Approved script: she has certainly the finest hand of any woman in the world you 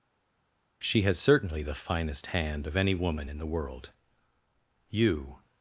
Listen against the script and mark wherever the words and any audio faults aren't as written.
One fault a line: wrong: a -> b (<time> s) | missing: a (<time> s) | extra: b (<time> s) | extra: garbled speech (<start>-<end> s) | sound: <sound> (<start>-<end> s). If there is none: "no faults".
no faults